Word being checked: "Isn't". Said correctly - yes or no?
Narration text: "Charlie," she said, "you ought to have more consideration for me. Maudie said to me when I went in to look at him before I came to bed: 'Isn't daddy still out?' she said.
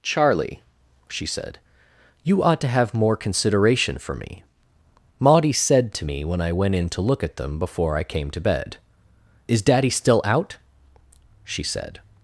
no